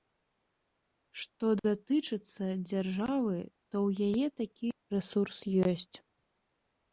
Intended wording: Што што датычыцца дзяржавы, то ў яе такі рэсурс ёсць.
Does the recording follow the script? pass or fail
fail